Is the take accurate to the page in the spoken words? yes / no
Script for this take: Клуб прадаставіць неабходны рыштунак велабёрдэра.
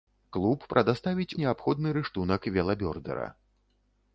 yes